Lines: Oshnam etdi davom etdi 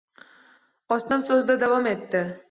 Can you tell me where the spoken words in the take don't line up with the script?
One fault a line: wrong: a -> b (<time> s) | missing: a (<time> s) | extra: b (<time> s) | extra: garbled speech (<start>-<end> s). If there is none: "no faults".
wrong: etdi -> so`zida (1.3 s)